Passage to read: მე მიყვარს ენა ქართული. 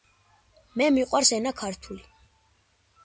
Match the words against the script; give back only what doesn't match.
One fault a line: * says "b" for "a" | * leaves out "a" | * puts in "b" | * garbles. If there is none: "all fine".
all fine